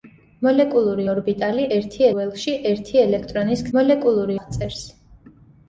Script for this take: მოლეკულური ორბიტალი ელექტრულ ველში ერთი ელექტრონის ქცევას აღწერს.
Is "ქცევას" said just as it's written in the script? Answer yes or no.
no